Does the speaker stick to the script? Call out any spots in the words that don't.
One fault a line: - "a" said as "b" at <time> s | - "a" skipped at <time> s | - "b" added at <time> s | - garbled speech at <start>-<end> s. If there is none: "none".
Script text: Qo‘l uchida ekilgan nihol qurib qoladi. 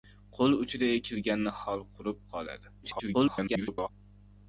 - garbled speech at 2.8-3.9 s